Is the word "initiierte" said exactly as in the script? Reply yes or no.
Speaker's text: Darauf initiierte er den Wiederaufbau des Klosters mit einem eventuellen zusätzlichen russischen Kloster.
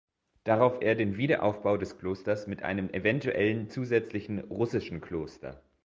no